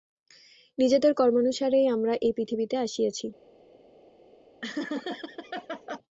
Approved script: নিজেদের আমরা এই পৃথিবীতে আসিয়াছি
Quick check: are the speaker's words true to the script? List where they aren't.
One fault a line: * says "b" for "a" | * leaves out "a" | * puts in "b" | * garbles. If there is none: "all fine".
* puts in "কর্মানুসারেই"